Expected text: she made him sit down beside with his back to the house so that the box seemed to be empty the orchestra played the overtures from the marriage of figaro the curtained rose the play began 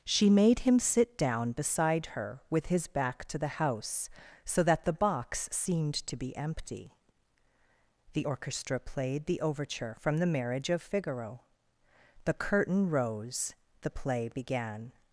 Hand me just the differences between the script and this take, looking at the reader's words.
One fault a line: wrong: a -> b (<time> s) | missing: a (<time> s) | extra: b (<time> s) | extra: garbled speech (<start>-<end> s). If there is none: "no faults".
extra: her (2.1 s)
wrong: overtures -> overture (9.4 s)
wrong: curtained -> curtain (12.3 s)